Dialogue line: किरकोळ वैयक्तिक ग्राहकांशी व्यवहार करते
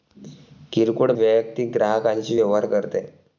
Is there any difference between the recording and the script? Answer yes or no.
no